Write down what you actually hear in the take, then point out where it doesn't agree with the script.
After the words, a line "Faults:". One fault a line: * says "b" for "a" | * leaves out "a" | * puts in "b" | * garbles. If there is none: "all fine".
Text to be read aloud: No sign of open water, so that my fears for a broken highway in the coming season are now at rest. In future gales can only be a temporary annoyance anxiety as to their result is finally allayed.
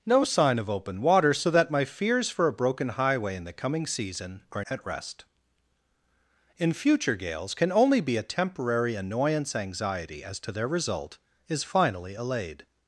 No sign of open water, so that my fears for a broken highway in the coming season are at rest. In future gales can only be a temporary annoyance anxiety as to their result is finally allayed.
Faults:
* leaves out "now"